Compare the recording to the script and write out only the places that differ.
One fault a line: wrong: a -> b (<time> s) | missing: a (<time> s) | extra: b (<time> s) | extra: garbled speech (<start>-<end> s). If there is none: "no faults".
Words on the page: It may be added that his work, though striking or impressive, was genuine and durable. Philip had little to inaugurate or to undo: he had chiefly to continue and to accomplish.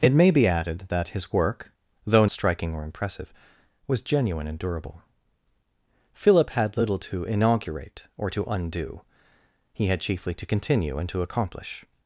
no faults